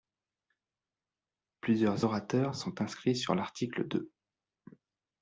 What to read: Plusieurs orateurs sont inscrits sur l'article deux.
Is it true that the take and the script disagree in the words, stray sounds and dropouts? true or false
false